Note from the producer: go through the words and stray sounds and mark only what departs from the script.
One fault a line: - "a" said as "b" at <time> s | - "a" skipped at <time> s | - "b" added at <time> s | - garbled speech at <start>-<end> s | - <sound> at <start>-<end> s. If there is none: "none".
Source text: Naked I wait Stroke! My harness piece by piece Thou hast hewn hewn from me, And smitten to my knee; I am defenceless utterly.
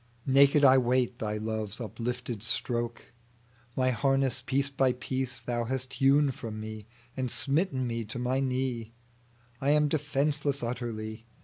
- "Thy love's uplifted" added at 1.2 s
- "hewn" skipped at 6.3 s
- "me" added at 7.8 s